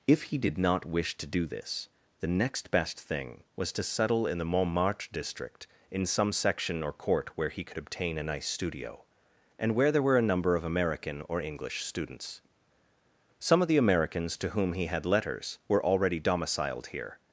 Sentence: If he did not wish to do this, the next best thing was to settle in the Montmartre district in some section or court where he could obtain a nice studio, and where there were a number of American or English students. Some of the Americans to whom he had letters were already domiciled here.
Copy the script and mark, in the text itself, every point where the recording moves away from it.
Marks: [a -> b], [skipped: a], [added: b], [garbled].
If he did not wish to do this, the next best thing was to settle in the Montmartre district in some section or court where he could obtain a nice studio, and where there were a number of American or English students. Some of the Americans to whom he had letters were already domiciled here.